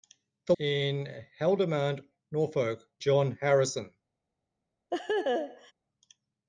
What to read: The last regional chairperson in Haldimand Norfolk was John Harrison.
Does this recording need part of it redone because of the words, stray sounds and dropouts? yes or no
yes